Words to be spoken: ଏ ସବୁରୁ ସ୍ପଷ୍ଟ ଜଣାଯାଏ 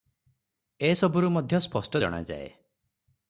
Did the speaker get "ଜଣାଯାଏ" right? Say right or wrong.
right